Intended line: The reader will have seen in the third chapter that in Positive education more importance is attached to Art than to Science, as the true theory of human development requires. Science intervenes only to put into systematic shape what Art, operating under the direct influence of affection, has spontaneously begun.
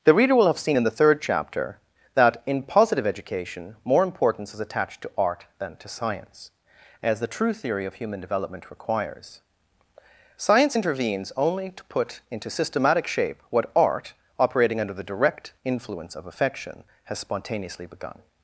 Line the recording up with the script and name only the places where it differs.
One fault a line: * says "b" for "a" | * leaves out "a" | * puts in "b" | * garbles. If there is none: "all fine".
all fine